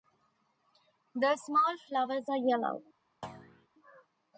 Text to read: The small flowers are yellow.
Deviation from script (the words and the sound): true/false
true